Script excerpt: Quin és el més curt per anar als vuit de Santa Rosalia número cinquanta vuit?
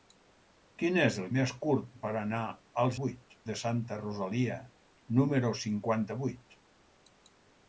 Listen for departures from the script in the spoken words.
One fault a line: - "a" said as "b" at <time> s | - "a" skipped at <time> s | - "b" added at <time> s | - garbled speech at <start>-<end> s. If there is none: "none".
none